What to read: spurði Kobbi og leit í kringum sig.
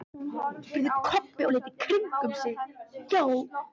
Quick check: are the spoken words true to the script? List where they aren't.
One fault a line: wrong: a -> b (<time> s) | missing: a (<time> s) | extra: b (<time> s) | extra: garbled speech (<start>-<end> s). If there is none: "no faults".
no faults